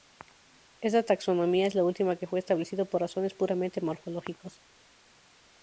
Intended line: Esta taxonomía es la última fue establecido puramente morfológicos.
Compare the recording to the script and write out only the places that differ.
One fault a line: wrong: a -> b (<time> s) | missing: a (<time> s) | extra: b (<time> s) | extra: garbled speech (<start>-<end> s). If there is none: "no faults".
extra: que (2.1 s)
extra: por razones (2.9 s)